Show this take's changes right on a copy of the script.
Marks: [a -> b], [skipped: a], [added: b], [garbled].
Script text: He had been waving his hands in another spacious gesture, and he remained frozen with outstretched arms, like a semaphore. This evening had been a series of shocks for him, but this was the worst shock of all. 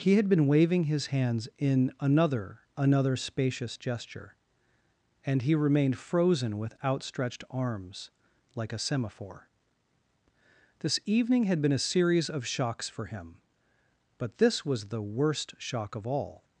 He had been waving his hands in another [added: another] spacious gesture, and he remained frozen with outstretched arms, like a semaphore. This evening had been a series of shocks for him, but this was the worst shock of all.